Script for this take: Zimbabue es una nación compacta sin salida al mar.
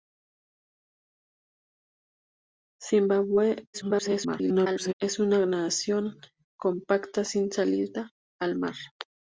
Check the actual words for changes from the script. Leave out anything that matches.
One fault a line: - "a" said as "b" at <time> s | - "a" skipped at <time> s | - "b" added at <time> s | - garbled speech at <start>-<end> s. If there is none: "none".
- garbled speech at 3.7-4.9 s